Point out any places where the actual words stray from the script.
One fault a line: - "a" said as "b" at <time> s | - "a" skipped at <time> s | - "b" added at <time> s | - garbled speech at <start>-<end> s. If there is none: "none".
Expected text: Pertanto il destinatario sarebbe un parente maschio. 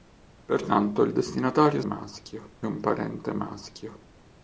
- "sarebbe" said as "maschio" at 1.8 s